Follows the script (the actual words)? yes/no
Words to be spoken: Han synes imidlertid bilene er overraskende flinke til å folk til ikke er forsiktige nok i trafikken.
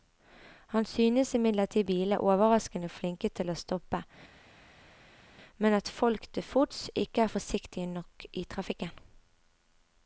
no